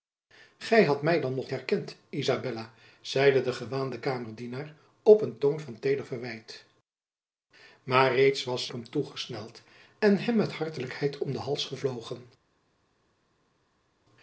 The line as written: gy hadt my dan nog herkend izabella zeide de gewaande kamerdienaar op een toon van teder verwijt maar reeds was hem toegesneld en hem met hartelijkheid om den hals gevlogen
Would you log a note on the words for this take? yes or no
no